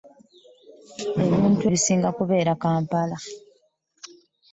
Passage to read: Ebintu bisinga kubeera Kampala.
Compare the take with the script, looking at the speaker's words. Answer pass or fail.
pass